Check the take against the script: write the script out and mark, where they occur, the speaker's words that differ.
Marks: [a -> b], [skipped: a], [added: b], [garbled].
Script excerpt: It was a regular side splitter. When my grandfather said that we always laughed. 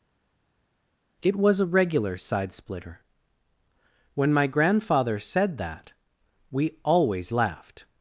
It was a regular side splitter. When my grandfather said that we always laughed.